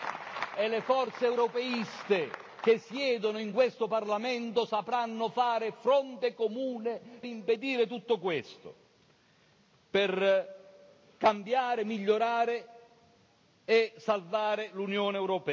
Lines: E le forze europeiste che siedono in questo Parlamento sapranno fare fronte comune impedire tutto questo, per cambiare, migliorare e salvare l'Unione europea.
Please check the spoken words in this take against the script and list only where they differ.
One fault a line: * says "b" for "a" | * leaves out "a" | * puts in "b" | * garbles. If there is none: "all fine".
all fine